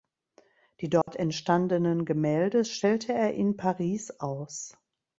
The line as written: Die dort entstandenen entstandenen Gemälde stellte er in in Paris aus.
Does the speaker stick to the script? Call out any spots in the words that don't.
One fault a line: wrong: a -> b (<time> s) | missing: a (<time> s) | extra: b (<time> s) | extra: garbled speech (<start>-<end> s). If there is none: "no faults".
missing: entstandenen (2.0 s)
missing: in (3.6 s)